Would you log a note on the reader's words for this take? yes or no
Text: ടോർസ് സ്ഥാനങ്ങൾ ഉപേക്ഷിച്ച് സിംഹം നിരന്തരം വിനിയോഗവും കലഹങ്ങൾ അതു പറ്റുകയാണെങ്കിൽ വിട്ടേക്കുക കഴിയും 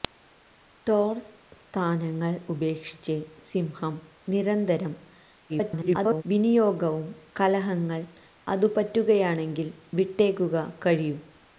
yes